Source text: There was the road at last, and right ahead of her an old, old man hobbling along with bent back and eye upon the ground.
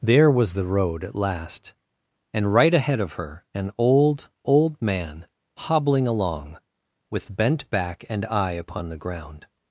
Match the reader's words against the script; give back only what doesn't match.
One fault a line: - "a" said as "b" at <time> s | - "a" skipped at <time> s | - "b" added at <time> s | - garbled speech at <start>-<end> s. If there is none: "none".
none